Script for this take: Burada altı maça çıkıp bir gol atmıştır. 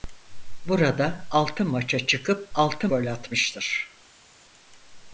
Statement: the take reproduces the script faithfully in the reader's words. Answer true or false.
false